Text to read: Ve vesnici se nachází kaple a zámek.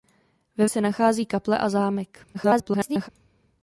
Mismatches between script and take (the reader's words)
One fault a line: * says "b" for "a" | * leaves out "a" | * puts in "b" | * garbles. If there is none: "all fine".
* leaves out "vesnici"
* garbles